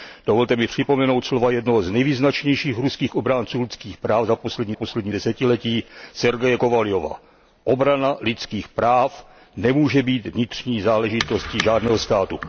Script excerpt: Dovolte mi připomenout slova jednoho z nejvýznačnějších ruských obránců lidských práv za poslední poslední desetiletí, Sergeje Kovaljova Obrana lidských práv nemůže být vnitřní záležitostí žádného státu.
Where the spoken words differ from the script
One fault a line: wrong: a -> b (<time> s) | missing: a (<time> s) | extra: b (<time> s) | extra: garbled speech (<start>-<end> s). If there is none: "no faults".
no faults